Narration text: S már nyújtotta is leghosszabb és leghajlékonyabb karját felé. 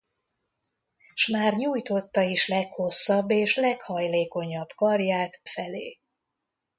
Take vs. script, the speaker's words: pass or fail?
pass